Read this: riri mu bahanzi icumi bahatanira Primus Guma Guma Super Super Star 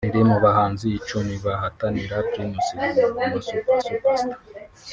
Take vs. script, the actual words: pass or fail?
pass